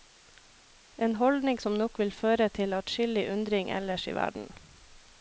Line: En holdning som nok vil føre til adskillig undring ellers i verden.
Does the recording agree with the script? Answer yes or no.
yes